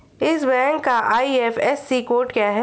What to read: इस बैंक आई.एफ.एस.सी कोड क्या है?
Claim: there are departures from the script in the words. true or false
true